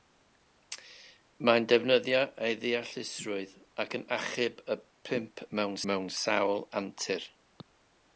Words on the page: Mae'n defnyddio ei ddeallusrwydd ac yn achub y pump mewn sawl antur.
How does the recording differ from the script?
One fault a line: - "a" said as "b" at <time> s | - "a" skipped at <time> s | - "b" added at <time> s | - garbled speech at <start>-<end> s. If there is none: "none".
- "mewn" added at 5.9 s